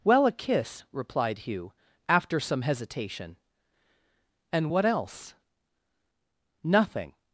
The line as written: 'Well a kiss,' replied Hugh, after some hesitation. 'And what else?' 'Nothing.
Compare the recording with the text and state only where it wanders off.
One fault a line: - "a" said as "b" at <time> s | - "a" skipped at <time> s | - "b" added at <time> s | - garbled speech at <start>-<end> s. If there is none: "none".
none